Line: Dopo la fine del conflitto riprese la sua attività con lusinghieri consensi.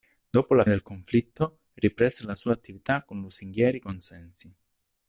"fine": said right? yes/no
no